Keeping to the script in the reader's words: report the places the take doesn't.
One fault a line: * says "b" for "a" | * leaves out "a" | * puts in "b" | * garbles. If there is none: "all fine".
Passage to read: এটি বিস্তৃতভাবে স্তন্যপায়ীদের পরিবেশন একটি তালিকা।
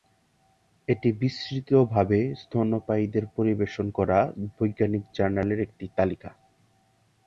* puts in "করা বৈজ্ঞানিক জার্নালের"